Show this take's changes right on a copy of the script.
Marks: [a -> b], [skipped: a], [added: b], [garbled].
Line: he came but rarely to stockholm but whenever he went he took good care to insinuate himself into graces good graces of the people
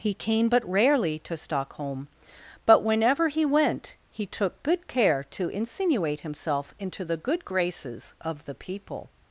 he came but rarely to stockholm but whenever he went he took good care to insinuate himself into [graces -> the] good graces of the people